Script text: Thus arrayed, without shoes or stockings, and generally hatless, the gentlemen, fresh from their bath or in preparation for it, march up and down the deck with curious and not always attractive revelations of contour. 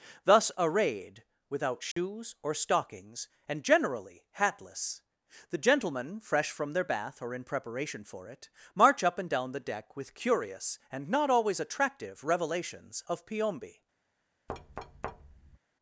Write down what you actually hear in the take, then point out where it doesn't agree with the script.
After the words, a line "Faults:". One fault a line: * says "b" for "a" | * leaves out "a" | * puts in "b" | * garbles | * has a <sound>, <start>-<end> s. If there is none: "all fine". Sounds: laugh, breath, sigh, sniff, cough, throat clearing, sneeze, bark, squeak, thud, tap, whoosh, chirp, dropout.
Thus arrayed, without shoes or stockings, and generally hatless, the gentlemen, fresh from their bath or in preparation for it, march up and down the deck with curious and not always attractive revelations of piombi.
Faults:
* has a dropout, 1.9-2.0 s
* says "piombi" for "contour"
* has a thud, 14.5-15.6 s